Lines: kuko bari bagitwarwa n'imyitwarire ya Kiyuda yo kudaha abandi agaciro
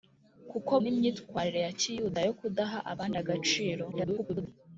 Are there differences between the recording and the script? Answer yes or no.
yes